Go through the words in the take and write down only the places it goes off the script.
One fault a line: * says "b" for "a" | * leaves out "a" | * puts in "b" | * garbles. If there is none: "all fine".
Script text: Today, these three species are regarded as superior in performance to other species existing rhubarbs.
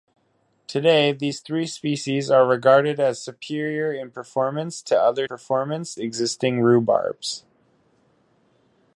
* says "performance" for "species"